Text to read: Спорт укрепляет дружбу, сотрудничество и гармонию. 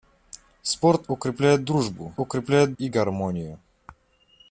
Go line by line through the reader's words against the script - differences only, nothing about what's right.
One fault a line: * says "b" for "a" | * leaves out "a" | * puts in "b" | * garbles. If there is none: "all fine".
* says "укрепляет" for "сотрудничество"